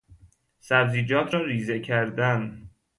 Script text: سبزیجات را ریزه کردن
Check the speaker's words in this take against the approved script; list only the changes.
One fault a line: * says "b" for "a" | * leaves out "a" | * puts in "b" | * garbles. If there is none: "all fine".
all fine